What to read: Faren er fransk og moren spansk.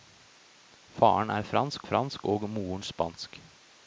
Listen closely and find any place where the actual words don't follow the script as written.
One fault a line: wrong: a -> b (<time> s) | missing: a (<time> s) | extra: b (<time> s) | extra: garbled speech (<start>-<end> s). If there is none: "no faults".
extra: fransk (1.8 s)